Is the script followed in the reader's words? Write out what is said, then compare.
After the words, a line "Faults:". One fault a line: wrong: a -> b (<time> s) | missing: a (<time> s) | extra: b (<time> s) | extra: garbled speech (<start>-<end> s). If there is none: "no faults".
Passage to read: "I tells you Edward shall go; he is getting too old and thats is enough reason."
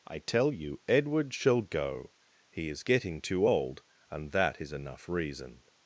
"I tell you Edward shall go; he is getting too old and that is enough reason."
Faults:
wrong: tells -> tell (0.2 s)
wrong: thats -> that (4.3 s)